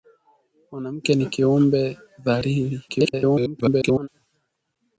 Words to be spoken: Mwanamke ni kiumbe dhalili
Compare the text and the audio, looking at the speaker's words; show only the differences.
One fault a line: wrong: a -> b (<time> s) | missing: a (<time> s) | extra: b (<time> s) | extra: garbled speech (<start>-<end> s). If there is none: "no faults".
extra: garbled speech (2.9-4.1 s)